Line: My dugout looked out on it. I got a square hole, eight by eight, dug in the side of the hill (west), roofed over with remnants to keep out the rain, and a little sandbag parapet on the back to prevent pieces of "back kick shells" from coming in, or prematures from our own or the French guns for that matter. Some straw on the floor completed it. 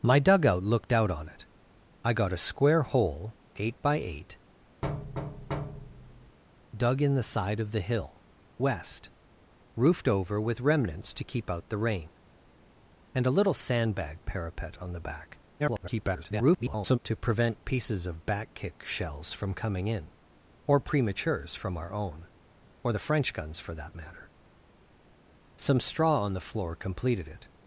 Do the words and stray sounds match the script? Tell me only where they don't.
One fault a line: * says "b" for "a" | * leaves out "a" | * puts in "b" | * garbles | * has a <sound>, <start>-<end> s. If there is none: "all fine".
* has a thud, 4.8-6.4 s
* garbles